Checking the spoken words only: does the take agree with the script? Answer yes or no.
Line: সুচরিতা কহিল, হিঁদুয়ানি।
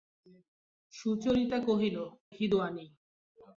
yes